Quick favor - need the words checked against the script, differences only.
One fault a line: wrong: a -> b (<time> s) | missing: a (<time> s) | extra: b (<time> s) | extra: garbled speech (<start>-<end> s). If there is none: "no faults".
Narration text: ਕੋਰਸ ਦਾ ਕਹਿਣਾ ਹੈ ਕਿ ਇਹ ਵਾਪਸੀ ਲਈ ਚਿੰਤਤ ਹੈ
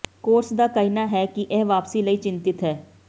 no faults